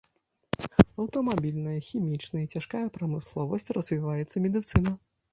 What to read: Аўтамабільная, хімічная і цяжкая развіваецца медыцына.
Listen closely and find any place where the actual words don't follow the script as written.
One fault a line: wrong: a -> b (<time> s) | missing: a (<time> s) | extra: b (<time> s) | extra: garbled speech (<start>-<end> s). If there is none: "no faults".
extra: прамысловасць (3.0 s)